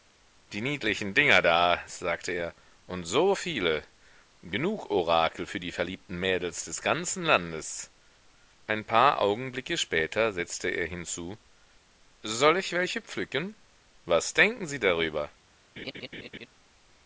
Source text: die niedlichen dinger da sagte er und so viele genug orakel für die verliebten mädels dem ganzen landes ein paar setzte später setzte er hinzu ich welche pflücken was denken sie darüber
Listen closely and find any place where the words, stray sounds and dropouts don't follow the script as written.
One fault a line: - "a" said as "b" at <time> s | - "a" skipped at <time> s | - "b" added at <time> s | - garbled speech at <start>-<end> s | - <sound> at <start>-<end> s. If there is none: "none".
- "dem" said as "des" at 6.6 s
- "setzte" said as "augenblicke" at 9.2 s
- "soll" added at 12.2 s
- laugh at 15.8-16.5 s